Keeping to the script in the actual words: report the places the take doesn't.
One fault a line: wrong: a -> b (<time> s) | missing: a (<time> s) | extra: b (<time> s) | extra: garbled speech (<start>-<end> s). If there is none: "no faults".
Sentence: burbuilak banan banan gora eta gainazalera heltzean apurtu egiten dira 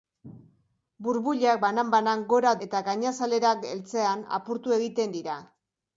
no faults